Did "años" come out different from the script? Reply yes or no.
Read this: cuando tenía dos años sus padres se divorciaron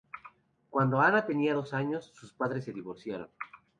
no